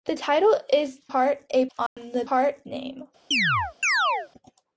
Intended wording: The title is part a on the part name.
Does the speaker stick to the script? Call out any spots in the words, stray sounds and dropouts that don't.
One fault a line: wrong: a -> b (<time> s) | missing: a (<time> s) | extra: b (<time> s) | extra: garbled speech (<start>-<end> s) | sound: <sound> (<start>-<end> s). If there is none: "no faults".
sound: dropout (1.9-2.0 s)
sound: chirp (3.3-4.3 s)